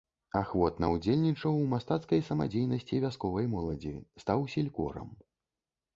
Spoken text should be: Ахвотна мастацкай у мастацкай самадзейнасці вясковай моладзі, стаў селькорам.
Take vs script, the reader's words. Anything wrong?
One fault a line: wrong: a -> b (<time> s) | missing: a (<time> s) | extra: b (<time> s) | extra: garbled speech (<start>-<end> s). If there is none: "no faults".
wrong: мастацкай -> ўдзельнічаў (0.9 s)